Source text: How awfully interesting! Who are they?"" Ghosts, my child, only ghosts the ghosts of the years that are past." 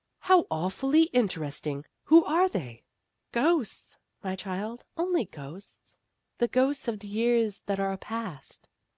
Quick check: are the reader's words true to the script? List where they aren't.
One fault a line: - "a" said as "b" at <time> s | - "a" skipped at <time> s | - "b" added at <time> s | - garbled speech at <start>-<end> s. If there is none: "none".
none